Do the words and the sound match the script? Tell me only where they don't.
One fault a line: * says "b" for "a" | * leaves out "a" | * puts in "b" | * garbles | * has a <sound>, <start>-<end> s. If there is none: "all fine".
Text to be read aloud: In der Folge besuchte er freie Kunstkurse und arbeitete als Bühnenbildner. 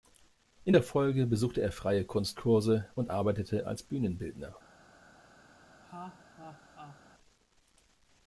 * has a laugh, 5.8-7.0 s